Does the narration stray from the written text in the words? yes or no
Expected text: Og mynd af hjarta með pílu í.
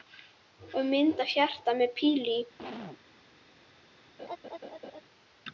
no